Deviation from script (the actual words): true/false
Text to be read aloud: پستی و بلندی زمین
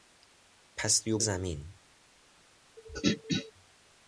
true